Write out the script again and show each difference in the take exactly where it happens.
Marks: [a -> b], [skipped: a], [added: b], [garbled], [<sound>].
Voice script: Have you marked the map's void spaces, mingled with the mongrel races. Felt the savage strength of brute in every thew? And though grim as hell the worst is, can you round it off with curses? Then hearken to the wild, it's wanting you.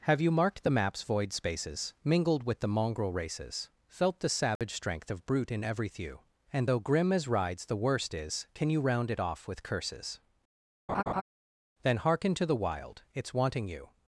Have you marked the map's void spaces, mingled with the mongrel races. Felt the savage [dropout] strength of brute in every thew? And though grim as [hell -> rides] the worst is, can you round it off with curses? [laugh] Then hearken to the wild, it's wanting you.